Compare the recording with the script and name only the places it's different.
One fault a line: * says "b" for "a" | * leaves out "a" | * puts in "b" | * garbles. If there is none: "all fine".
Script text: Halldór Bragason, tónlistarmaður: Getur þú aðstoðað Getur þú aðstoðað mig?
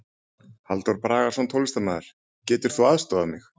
* leaves out "Getur þú aðstoðað"